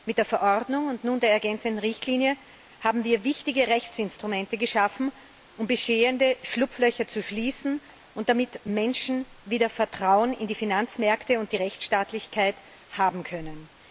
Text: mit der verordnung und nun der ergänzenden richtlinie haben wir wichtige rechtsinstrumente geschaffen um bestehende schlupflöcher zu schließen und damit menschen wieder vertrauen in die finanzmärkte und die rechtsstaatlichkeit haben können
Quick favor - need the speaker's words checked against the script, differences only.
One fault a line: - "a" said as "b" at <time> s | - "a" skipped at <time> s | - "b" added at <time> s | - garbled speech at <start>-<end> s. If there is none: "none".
none